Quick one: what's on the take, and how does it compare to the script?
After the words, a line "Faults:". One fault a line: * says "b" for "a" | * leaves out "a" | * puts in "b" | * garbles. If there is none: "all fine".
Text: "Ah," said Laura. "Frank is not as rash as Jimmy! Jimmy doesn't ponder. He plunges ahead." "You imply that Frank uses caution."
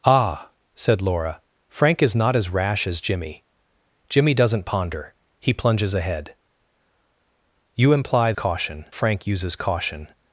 "Ah," said Laura. "Frank is not as rash as Jimmy! Jimmy doesn't ponder. He plunges ahead." "You imply caution Frank uses caution."
Faults:
* says "caution" for "that"